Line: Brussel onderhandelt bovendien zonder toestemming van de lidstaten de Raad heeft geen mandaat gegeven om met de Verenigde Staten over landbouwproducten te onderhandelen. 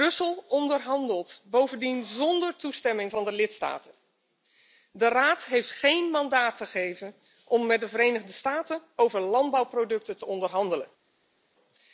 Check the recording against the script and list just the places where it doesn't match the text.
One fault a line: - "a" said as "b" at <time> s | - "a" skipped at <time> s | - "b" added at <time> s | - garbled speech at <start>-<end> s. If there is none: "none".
none